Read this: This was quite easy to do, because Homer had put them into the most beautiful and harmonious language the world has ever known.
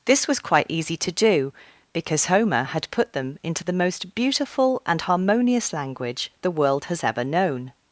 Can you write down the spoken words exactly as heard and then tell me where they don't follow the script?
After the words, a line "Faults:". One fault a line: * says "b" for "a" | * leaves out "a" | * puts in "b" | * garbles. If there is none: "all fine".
This was quite easy to do, because Homer had put them into the most beautiful and harmonious language the world has ever known.
Faults:
all fine